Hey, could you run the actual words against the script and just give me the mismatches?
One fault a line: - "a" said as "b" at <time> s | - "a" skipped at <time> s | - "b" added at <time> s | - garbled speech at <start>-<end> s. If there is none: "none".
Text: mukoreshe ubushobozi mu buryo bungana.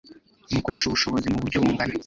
none